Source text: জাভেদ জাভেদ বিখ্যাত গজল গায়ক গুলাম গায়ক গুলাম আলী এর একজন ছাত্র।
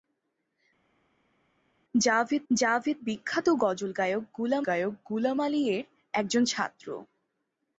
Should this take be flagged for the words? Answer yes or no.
no